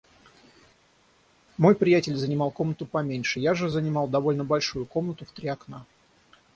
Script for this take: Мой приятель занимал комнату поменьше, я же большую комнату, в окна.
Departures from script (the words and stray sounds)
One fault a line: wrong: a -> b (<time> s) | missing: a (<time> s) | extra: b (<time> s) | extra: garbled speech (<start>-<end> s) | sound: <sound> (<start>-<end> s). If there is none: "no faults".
extra: занимал довольно (3.7 s)
extra: три (5.3 s)